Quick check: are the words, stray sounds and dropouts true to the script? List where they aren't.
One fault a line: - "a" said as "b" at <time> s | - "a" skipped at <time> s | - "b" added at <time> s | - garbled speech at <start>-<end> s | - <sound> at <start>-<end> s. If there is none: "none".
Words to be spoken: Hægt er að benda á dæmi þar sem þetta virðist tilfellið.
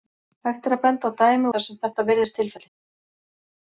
none